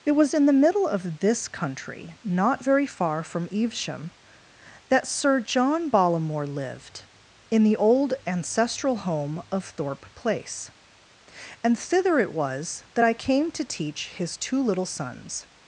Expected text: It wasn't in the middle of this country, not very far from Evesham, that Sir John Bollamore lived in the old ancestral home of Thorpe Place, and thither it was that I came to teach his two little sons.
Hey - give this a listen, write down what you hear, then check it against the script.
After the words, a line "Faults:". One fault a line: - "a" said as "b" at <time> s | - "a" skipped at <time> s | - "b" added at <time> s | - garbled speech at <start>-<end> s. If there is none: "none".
It was in the middle of this country, not very far from Evesham, that Sir John Bollamore lived in the old ancestral home of Thorpe Place, and thither it was that I came to teach his two little sons.
Faults:
- "wasn't" said as "was" at 0.1 s